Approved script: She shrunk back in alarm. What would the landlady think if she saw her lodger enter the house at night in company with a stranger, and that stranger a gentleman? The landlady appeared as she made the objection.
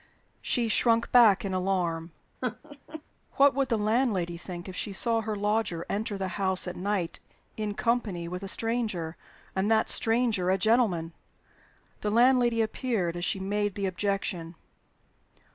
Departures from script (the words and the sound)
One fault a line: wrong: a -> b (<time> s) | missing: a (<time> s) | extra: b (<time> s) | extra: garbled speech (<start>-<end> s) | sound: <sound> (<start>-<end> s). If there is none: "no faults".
sound: laugh (2.4-3.0 s)